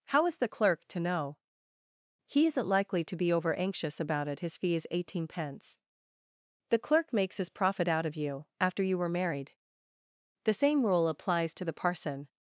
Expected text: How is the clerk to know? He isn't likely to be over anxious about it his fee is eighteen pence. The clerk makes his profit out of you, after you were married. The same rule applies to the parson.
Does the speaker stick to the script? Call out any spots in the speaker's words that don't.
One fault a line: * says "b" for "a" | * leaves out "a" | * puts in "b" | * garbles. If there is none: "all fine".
all fine